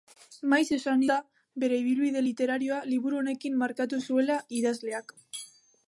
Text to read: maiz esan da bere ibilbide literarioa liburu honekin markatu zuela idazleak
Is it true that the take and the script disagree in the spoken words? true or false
false